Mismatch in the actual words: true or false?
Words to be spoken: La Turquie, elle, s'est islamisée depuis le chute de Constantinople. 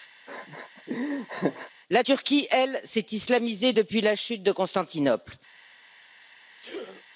true